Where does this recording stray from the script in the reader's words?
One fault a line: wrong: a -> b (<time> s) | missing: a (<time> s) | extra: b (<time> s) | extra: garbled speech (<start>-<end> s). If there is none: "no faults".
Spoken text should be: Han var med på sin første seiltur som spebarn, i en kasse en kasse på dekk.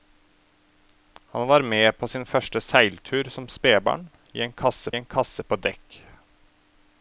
no faults